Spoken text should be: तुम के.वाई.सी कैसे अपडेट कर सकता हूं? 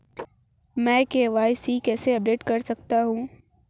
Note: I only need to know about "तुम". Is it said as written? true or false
false